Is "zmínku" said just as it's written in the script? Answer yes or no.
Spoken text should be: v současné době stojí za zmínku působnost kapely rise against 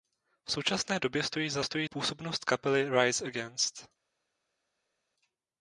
no